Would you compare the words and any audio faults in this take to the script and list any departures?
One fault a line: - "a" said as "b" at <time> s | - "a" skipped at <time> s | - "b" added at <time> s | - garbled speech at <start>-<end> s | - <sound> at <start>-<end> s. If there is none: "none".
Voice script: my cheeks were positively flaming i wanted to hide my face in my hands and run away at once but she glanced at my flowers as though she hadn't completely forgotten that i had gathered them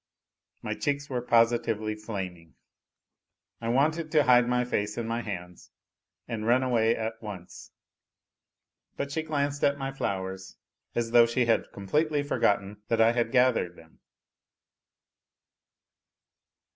- "hadn't" said as "had" at 11.4 s